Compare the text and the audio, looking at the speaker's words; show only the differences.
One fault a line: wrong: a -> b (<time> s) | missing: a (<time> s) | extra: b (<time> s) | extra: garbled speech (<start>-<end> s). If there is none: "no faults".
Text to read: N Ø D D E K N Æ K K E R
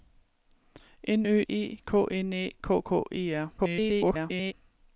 missing: D D (1.4 s)
extra: garbled speech (3.6-4.5 s)